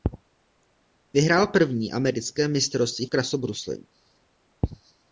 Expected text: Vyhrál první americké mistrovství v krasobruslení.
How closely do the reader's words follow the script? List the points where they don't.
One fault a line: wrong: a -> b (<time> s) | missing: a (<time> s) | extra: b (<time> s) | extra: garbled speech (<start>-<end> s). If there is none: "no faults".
no faults